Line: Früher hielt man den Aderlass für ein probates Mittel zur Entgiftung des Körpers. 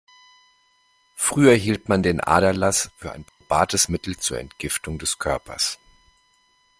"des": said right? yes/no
yes